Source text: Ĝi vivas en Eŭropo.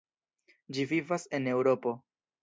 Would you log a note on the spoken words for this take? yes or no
no